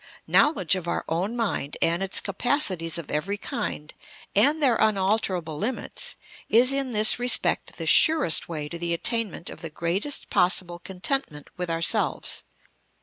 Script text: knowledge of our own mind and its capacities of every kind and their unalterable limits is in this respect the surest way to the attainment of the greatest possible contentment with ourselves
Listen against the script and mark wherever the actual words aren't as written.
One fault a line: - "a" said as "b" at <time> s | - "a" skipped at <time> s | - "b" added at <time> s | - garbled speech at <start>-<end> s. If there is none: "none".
none